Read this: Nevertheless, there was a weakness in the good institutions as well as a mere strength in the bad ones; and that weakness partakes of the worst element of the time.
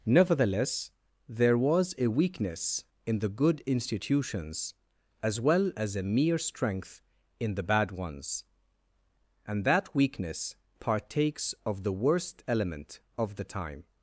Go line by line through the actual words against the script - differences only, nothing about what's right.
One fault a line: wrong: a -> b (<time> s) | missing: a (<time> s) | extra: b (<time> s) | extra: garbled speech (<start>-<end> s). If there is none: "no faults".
no faults